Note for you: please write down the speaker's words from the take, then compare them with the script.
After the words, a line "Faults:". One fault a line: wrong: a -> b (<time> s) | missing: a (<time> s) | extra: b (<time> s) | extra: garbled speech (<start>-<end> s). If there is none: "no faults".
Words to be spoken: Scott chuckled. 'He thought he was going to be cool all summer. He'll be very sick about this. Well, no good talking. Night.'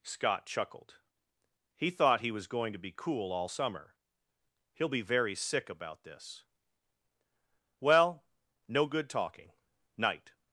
Scott chuckled. 'He thought he was going to be cool all summer. He'll be very sick about this. Well, no good talking. Night.'
Faults:
no faults